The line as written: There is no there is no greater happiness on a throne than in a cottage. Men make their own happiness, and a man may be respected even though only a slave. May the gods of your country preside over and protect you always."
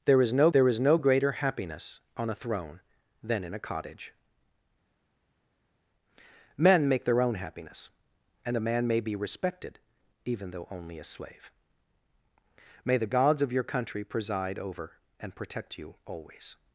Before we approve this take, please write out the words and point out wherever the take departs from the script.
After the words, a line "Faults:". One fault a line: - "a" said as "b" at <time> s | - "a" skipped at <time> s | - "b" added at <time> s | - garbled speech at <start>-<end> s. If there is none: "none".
There is no there is no greater happiness on a throne than in a cottage. Men make their own happiness, and a man may be respected even though only a slave. May the gods of your country preside over and protect you always."
Faults:
none